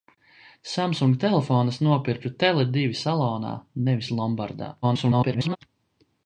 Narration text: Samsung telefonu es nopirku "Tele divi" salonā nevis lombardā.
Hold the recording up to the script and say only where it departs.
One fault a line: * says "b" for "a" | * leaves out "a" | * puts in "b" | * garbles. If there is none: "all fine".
* garbles